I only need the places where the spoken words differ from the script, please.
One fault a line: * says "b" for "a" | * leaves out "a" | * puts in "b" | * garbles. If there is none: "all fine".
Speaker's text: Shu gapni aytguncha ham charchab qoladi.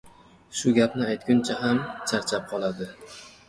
all fine